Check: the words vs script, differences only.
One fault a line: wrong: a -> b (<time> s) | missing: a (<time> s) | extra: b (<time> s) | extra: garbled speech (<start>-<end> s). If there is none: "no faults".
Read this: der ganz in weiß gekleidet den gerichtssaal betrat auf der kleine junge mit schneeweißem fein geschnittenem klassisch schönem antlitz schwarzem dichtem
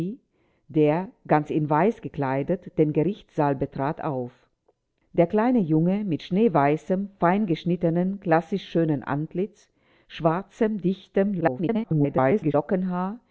extra: garbled speech (11.4-12.5 s)